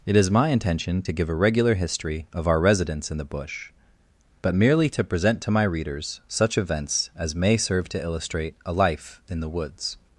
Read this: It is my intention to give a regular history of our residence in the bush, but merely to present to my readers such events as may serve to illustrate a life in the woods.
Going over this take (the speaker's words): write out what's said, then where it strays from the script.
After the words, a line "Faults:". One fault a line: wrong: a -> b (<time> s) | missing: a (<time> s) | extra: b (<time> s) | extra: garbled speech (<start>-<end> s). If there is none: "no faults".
It is my intention to give a regular history of our residence in the bush, but merely to present to my readers such events as may serve to illustrate a life in the woods.
Faults:
no faults